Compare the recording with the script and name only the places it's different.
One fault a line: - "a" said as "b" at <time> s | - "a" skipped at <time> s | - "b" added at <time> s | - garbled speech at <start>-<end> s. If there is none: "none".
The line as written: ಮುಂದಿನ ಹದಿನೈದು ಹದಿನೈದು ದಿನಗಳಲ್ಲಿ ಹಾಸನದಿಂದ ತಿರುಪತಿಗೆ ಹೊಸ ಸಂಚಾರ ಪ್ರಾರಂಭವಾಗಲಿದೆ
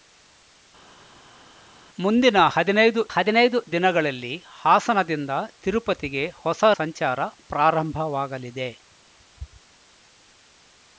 none